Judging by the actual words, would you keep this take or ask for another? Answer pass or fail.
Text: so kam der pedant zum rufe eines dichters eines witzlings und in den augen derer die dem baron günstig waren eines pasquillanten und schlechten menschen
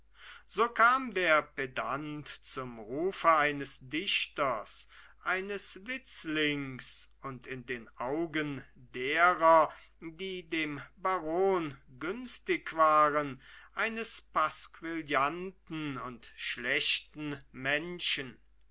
pass